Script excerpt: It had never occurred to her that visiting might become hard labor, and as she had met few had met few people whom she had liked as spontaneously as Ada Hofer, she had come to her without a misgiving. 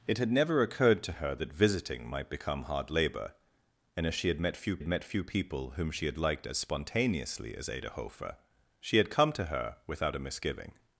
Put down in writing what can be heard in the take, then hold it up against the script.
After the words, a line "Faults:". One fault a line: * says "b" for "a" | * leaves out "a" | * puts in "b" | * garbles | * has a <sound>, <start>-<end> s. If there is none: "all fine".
It had never occurred to her that visiting might become hard labor, and as she had met few had met few people whom she had liked as spontaneously as Ada Hofer, she had come to her without a misgiving.
Faults:
all fine